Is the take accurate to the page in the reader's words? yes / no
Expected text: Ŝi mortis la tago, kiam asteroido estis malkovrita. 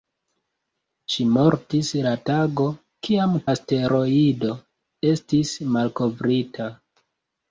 yes